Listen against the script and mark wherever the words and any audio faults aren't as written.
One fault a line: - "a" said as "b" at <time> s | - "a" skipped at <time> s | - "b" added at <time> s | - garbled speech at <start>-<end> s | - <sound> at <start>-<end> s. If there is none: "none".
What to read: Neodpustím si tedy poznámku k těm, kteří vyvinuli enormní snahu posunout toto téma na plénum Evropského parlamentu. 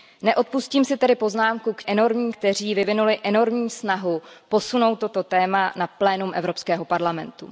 - "těm" said as "enormní" at 1.9 s